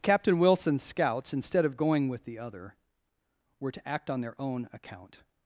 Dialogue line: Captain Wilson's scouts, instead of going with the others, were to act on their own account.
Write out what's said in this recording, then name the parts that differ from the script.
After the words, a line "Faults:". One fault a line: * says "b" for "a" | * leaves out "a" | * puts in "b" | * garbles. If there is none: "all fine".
Captain Wilson's scouts, instead of going with the other, were to act on their own account.
Faults:
* says "other" for "others"